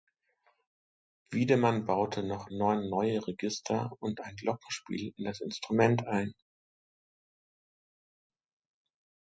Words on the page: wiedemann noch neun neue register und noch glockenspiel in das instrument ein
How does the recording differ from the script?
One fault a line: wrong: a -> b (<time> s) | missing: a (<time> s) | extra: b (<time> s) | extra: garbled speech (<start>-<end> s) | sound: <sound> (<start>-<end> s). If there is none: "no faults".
extra: baute (1.9 s)
wrong: noch -> ein (4.2 s)